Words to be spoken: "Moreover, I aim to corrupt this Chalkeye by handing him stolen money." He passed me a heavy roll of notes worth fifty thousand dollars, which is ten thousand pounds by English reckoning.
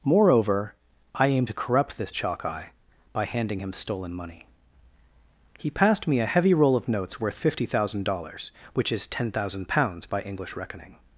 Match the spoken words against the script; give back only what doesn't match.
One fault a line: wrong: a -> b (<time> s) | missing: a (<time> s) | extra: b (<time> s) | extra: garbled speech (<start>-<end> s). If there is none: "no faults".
no faults